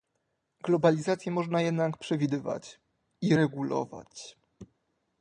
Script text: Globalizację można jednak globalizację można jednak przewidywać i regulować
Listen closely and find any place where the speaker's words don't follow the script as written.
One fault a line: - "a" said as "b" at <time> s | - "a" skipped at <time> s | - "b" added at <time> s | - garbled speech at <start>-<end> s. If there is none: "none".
- "globalizację można jednak" skipped at 2.0 s